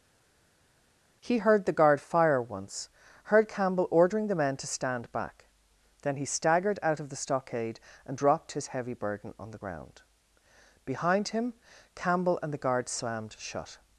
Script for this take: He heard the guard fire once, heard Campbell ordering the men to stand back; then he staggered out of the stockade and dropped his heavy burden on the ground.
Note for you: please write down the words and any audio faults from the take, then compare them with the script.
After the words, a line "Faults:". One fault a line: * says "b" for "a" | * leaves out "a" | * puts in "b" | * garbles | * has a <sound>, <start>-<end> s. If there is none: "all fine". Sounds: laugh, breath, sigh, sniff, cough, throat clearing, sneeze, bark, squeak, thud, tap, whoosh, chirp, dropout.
He heard the guard fire once, heard Campbell ordering the men to stand back; then he staggered out of the stockade and dropped his heavy burden on the ground. Behind him Campbell and the guard slammed shut
Faults:
* puts in "Behind him Campbell and the guard slammed shut"